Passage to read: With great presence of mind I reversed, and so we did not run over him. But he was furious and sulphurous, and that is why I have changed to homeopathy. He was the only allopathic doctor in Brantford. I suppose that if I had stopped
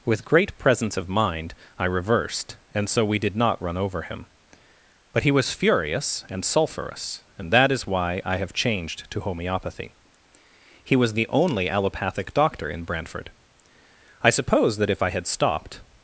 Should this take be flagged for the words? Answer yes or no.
no